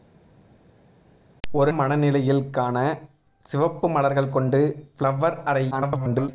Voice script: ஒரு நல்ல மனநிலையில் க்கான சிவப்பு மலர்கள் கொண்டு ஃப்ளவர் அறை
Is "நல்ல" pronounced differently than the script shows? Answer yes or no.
yes